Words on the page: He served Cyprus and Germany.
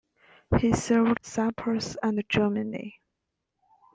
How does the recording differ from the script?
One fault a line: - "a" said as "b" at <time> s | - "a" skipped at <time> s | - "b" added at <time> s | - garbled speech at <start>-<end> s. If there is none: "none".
none